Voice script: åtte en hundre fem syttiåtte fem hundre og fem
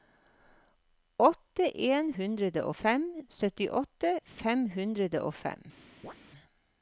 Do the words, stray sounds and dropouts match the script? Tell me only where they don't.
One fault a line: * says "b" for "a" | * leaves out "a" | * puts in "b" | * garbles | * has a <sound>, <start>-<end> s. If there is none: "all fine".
* has a chirp, 6.0-6.1 s